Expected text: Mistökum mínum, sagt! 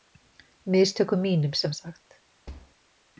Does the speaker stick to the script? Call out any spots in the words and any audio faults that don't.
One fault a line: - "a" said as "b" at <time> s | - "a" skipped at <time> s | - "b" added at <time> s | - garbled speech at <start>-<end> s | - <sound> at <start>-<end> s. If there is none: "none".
- "sem" added at 1.5 s
- thud at 2.5-2.8 s